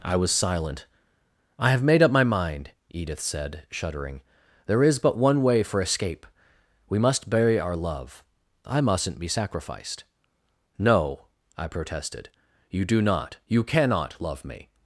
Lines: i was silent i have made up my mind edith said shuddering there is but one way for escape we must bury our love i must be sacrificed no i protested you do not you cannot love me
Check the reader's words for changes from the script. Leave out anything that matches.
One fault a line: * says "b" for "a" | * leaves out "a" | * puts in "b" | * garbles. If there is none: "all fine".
* says "mustn't" for "must"